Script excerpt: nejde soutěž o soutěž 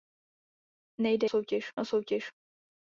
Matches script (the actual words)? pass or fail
pass